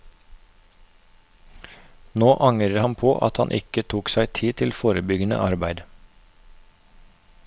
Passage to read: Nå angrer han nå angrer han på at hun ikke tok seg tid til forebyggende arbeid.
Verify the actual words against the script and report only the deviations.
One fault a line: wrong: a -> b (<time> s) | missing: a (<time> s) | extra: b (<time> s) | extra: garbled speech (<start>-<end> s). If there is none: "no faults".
missing: nå angrer han (3.0 s)
wrong: hun -> han (3.4 s)